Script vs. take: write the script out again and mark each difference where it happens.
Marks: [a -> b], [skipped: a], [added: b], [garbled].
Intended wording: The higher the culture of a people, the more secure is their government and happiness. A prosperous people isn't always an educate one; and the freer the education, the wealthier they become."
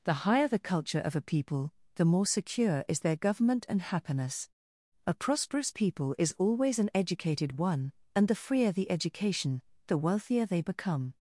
The higher the culture of a people, the more secure is their government and happiness. A prosperous people [isn't -> is] always an [educate -> educated] one; and the freer the education, the wealthier they become."